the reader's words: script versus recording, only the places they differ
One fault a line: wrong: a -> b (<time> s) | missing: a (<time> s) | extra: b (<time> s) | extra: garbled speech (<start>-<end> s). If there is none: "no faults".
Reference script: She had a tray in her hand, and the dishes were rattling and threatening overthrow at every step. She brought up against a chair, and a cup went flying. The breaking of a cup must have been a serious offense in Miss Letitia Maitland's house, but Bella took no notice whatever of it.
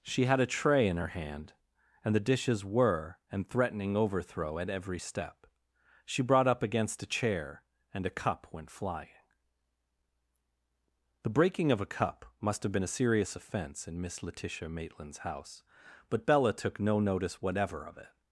missing: rattling (3.2 s)